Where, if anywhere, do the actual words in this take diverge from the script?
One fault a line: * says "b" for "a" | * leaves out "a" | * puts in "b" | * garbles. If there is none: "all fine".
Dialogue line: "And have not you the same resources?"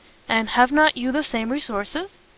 all fine